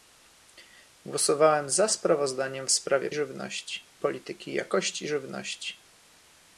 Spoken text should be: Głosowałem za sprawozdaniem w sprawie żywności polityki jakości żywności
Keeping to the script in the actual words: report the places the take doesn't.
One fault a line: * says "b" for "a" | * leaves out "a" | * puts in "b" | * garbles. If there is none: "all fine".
all fine